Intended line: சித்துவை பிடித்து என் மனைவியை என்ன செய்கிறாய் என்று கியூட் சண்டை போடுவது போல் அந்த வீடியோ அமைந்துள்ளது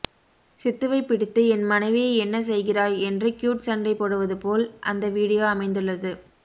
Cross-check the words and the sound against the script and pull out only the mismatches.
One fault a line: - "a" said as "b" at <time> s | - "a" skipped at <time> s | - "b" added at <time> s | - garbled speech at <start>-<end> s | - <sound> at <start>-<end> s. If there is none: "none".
none